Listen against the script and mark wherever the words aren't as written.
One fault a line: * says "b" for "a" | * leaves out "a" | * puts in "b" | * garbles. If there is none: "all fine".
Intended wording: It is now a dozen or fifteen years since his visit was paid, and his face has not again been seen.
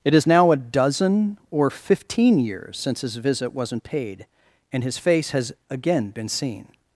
* says "wasn't" for "was"
* leaves out "not"